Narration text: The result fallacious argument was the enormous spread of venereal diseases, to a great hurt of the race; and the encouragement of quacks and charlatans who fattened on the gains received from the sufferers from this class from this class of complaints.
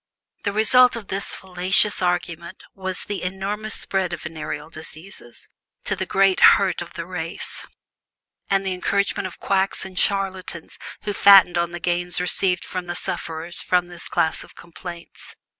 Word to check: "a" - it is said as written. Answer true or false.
false